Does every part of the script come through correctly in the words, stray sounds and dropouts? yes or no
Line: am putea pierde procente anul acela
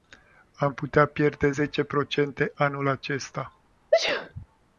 no